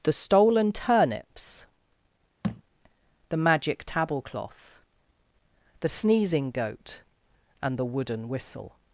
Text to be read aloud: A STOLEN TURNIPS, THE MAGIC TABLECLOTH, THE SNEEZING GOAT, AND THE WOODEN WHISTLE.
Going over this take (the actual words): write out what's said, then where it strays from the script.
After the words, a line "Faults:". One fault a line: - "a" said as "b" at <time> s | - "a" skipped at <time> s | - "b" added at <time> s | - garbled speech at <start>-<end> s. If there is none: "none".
THE STOLEN TURNIPS, THE MAGIC TABLECLOTH, THE SNEEZING GOAT, AND THE WOODEN WHISTLE.
Faults:
- "A" said as "THE" at 0.0 s